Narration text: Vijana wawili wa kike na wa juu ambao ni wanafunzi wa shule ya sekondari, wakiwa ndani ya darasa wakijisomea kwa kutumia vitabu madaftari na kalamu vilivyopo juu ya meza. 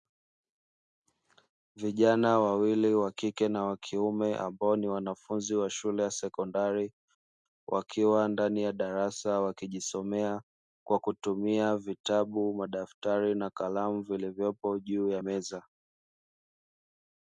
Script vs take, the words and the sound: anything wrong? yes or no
yes